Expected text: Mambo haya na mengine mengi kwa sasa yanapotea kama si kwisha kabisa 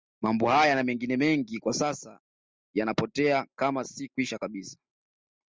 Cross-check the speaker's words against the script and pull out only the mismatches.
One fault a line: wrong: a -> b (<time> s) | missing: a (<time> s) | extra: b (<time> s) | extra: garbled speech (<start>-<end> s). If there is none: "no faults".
no faults